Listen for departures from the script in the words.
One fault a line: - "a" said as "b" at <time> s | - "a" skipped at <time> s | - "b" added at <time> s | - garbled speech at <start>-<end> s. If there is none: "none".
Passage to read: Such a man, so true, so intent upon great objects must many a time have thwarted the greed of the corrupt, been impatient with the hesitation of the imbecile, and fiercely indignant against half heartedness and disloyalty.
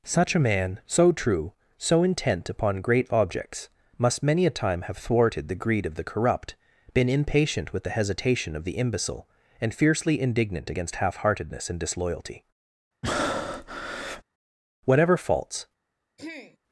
- "Whatever faults" added at 14.8 s